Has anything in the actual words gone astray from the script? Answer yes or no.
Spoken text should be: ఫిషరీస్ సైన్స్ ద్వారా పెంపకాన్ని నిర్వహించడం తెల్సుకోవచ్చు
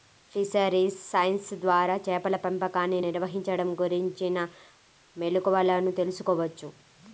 yes